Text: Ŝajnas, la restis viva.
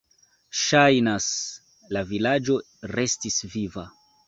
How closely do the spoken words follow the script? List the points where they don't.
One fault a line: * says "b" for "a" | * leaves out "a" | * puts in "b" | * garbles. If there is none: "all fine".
* puts in "vilaĝo"